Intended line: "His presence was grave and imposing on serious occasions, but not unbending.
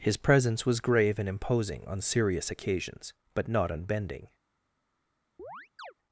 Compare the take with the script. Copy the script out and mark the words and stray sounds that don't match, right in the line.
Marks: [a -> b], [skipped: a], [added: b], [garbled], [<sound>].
"His presence was grave and imposing on serious occasions, but not unbending. [chirp]